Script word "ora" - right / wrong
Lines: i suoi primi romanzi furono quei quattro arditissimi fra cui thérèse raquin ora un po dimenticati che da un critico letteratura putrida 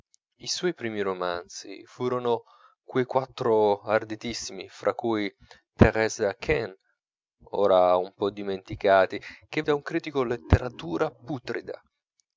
right